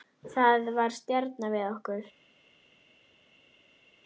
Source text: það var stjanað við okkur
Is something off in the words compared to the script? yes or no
no